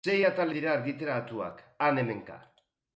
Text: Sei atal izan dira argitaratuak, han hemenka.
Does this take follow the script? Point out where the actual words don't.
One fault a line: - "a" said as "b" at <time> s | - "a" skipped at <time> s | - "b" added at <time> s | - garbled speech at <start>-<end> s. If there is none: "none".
- "izan" skipped at 0.5 s